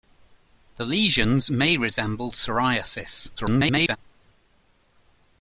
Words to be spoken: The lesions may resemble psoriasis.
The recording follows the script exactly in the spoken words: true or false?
false